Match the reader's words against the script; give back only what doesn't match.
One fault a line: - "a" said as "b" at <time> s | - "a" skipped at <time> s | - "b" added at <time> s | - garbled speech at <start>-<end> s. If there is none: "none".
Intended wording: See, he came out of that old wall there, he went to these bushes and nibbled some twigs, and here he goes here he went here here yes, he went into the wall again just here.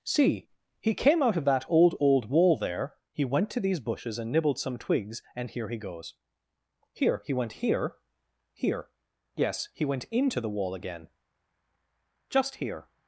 - "old" added at 2.0 s